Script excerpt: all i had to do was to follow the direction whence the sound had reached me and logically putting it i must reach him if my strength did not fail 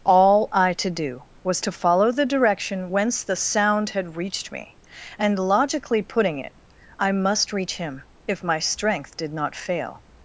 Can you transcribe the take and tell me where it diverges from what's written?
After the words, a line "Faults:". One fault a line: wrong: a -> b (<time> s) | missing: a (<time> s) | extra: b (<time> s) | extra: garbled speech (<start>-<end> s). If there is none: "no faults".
all i to do was to follow the direction whence the sound had reached me and logically putting it i must reach him if my strength did not fail
Faults:
missing: had (0.7 s)